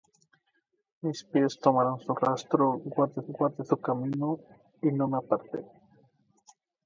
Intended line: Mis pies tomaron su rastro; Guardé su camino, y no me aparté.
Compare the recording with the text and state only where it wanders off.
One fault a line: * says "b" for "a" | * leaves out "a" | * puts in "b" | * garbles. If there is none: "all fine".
* puts in "Guardé"